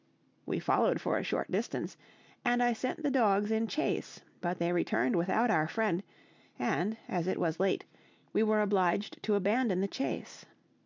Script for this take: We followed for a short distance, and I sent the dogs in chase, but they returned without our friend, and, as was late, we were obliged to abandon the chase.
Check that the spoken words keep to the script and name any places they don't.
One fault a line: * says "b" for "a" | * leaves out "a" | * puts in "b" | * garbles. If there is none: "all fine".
* puts in "it"